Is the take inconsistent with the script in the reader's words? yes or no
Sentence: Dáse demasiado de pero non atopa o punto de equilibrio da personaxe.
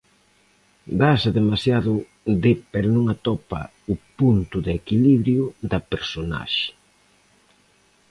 no